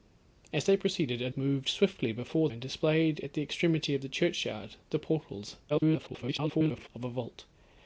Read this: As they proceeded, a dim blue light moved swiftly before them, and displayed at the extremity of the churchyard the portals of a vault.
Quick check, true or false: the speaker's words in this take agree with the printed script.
false